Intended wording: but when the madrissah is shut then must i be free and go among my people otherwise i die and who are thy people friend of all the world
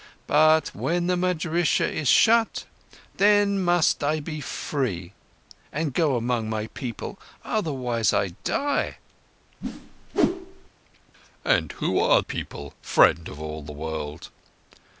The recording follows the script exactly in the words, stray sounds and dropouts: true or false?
false